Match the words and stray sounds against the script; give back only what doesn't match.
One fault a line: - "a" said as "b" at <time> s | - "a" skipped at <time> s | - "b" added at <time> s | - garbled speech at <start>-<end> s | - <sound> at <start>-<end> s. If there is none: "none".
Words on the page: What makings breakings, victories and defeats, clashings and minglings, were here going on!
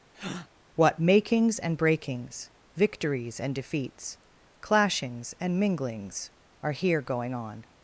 - breath at 0.1-0.5 s
- "and" added at 1.6 s
- "were" said as "are" at 6.6 s